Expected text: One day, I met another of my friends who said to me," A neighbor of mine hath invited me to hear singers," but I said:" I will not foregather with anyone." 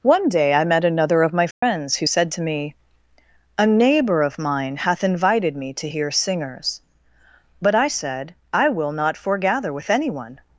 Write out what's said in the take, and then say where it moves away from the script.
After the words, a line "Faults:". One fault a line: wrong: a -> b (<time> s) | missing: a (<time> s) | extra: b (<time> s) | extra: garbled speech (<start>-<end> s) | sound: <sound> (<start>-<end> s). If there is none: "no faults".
One day, I met another of my friends who said to me," A neighbor of mine hath invited me to hear singers," but I said:" I will not foregather with anyone."
Faults:
sound: dropout (1.5-1.6 s)